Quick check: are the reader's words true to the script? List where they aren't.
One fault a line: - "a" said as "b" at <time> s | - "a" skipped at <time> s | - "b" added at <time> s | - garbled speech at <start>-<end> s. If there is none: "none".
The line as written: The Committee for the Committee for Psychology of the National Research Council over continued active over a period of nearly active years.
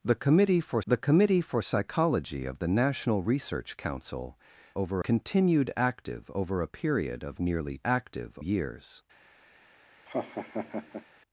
none